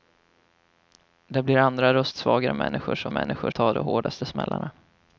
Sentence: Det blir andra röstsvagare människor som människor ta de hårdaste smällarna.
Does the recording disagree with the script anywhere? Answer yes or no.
no